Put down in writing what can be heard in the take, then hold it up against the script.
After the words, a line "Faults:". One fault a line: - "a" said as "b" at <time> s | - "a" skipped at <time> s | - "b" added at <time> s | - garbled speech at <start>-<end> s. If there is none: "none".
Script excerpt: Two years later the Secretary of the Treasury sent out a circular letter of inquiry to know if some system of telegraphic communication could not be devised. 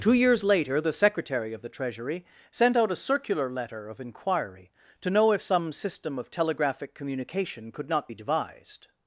Two years later the Secretary of the Treasury sent out a circular letter of inquiry to know if some system of telegraphic communication could not be devised.
Faults:
none